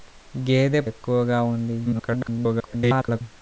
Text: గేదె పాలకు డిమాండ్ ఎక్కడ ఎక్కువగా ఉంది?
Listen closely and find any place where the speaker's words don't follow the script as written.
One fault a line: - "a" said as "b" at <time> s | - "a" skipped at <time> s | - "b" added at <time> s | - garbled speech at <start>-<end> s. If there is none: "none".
- "పాలకు డిమాండ్ ఎక్కడ" skipped at 0.8 s
- garbled speech at 1.8-3.2 s